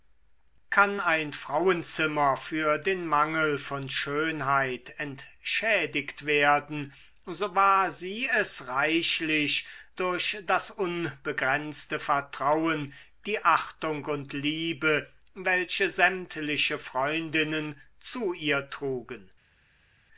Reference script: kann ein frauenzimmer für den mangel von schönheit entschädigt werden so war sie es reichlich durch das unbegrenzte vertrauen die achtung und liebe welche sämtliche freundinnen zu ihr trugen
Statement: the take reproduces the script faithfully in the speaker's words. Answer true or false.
true